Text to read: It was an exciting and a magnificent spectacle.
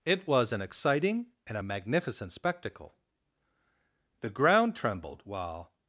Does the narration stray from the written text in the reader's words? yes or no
yes